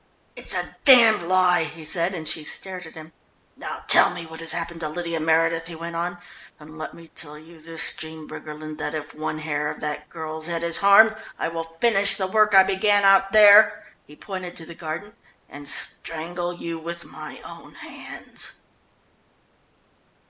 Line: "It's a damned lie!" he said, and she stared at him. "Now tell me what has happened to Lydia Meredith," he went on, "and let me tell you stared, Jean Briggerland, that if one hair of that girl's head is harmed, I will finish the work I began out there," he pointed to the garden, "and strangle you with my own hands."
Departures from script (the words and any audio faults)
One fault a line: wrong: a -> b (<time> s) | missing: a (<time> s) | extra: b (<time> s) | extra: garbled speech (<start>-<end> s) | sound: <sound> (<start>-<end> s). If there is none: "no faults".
wrong: stared -> this (7.6 s)